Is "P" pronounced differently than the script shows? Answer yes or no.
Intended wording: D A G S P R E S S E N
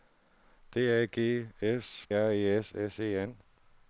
yes